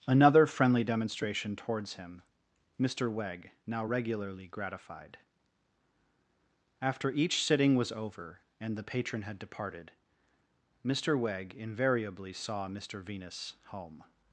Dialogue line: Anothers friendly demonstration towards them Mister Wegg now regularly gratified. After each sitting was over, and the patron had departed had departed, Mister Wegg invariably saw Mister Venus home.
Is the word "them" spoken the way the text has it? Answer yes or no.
no